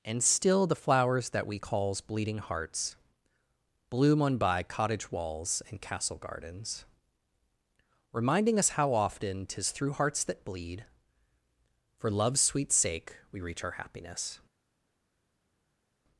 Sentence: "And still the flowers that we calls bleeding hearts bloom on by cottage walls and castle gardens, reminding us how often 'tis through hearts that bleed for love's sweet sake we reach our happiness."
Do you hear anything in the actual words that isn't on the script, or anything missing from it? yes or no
no